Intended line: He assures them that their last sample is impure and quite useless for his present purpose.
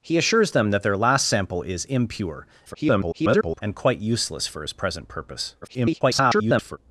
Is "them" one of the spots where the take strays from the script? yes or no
no